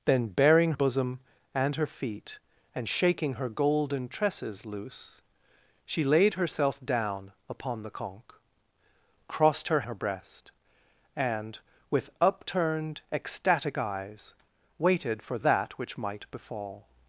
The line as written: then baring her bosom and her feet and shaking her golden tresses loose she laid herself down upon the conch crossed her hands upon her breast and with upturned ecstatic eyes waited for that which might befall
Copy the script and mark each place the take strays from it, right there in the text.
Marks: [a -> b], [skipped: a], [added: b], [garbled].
then baring [skipped: her] bosom and her feet and shaking her golden tresses loose she laid herself down upon the conch crossed her [skipped: hands upon] her breast and with upturned ecstatic eyes waited for that which might befall